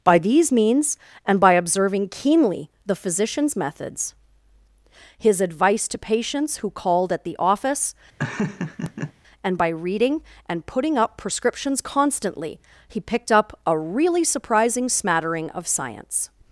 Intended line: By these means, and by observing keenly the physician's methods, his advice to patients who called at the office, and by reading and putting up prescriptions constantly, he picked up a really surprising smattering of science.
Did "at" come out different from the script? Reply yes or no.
no